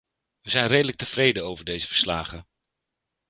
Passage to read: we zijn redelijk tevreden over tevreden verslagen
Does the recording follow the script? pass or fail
fail